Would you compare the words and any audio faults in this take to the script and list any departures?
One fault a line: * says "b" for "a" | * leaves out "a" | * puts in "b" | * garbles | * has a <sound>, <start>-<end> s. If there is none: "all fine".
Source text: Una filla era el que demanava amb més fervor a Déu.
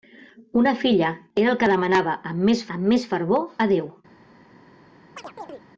* puts in "amb més"
* has a chirp, 5.2-5.6 s